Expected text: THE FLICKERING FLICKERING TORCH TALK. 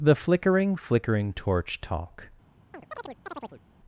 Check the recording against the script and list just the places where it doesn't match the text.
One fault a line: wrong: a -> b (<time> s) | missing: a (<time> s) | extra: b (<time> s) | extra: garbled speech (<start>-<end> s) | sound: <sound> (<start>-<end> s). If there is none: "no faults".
sound: chirp (2.7-3.6 s)